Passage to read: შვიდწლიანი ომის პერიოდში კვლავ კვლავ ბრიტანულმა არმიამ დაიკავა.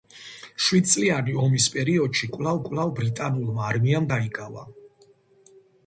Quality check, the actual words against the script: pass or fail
pass